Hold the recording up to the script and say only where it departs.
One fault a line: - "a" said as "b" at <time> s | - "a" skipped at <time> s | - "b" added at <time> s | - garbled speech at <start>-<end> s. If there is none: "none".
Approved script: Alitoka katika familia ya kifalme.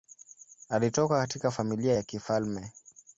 none